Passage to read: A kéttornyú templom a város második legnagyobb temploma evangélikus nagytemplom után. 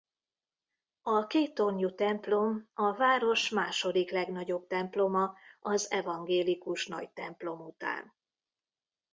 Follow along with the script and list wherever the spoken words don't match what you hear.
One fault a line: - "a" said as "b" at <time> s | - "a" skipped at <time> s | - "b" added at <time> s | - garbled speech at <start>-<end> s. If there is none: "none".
- "az" added at 5.6 s